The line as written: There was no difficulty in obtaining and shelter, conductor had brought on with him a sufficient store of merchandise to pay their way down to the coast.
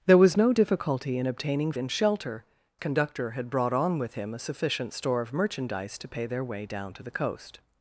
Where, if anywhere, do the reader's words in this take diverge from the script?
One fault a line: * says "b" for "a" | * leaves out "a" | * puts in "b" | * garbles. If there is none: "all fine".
all fine